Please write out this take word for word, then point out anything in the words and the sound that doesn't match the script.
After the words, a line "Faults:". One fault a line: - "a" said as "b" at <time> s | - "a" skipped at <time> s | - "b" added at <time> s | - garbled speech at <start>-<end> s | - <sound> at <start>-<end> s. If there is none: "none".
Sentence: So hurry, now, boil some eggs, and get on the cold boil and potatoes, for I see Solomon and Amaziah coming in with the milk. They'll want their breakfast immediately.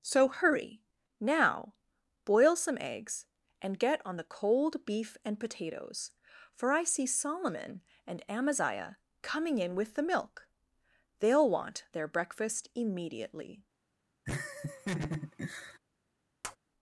So hurry, now, boil some eggs, and get on the cold beef and potatoes, for I see Solomon and Amaziah coming in with the milk. They'll want their breakfast immediately.
Faults:
- "boil" said as "beef" at 4.8 s
- laugh at 14.3-15.8 s
- tap at 16.4-16.6 s